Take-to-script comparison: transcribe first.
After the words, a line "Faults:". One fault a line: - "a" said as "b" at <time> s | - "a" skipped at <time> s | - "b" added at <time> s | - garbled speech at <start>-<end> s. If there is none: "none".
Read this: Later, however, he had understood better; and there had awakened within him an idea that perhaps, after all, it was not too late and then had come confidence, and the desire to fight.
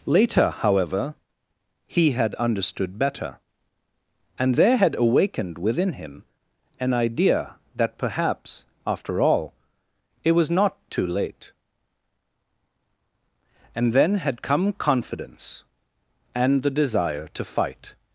Later, however, he had understood better; and there had awakened within him an idea that perhaps, after all, it was not too late and then had come confidence, and the desire to fight.
Faults:
none